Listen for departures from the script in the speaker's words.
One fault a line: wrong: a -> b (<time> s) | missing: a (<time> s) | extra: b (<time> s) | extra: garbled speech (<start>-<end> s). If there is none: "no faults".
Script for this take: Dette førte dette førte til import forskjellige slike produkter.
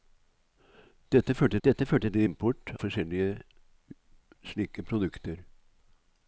no faults